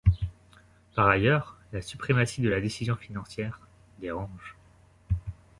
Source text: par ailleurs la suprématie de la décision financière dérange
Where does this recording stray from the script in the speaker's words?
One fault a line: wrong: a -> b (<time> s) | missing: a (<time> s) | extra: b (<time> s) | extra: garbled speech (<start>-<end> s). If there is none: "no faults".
no faults